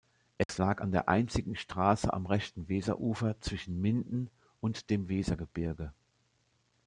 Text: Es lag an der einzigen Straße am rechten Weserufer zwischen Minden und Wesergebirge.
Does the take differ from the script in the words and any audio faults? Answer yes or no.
yes